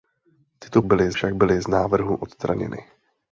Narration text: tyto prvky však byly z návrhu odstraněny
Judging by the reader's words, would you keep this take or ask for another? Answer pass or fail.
fail